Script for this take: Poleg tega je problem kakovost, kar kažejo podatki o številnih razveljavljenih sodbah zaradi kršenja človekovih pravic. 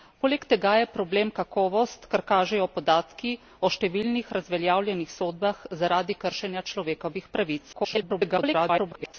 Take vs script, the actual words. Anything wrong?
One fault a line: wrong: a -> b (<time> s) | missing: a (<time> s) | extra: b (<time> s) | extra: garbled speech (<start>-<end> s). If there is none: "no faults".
extra: garbled speech (7.7-9.1 s)